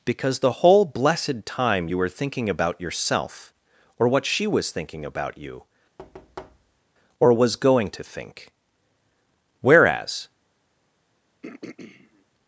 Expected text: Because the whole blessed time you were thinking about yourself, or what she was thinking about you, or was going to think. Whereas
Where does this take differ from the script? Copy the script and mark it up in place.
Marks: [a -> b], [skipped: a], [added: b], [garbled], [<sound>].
Because the whole blessed time you were thinking about yourself, or what she was thinking about you, [thud] or was going to think. Whereas [throat clearing]